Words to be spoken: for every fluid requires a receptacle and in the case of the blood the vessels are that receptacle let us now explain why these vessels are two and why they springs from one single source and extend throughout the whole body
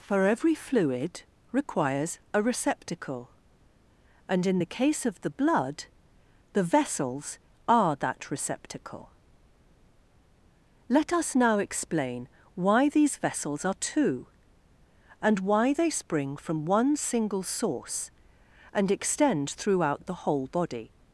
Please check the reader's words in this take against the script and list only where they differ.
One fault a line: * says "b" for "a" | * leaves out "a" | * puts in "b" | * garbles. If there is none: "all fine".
* says "spring" for "springs"